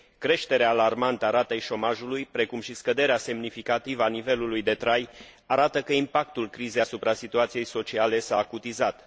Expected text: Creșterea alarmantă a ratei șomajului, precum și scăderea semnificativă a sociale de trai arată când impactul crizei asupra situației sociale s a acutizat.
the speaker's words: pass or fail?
fail